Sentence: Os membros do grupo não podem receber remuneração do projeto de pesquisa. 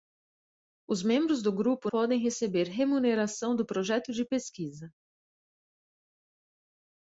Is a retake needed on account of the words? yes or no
yes